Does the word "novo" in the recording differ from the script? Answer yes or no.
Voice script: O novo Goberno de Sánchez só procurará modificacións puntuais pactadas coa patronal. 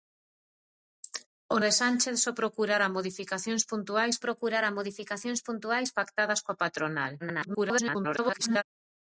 yes